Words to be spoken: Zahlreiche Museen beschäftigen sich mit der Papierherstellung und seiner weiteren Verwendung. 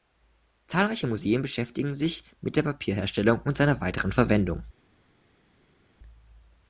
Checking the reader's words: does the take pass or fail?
pass